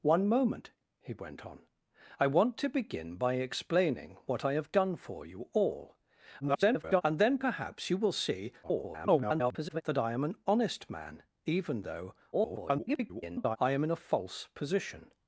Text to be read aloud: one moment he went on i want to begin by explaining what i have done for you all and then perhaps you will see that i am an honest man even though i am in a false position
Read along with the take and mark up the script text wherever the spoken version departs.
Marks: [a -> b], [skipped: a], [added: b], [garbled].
one moment he went on i want to begin by explaining what i have done for you all [garbled] and then perhaps you will see [garbled] that i am an honest man even though [garbled] i am in a false position